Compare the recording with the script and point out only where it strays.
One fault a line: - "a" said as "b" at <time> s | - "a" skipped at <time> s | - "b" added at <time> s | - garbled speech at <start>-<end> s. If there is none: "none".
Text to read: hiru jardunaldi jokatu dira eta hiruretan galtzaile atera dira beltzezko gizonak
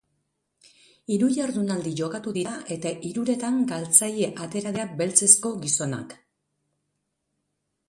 none